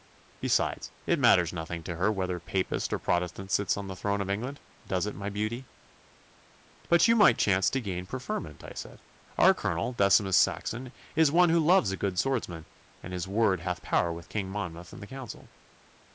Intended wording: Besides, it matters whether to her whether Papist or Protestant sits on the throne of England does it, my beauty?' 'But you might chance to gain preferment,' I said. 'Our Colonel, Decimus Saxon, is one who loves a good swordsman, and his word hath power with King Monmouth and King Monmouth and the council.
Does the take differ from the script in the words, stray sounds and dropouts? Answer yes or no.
yes